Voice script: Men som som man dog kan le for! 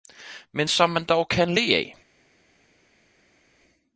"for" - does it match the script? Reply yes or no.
no